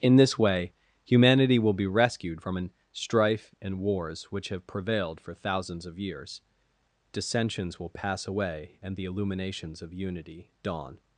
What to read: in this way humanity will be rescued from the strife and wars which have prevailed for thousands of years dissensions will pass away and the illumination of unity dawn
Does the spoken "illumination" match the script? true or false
false